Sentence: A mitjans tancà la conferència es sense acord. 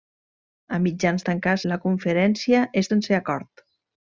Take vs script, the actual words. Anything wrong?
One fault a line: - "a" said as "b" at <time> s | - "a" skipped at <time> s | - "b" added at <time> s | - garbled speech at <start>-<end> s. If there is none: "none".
none